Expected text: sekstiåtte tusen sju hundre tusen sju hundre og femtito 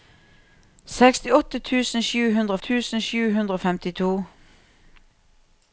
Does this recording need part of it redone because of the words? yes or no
no